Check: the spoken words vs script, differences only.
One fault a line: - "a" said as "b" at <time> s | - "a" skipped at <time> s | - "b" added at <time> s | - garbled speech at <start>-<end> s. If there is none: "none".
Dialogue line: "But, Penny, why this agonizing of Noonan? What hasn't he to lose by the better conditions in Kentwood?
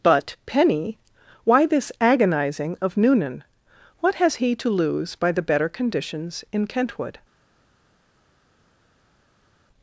- "hasn't" said as "has" at 4.2 s